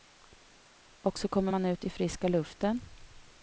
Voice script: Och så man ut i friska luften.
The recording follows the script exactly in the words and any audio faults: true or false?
false